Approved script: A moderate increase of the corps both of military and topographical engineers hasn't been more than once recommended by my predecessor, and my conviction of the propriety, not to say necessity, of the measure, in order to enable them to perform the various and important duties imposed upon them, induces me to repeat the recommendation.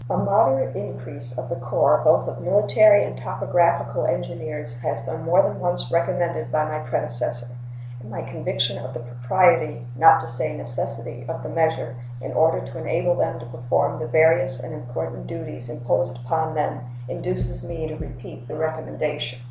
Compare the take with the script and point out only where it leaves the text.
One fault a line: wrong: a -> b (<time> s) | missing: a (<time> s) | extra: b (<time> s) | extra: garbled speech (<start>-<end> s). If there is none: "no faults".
wrong: hasn't -> has (4.8 s)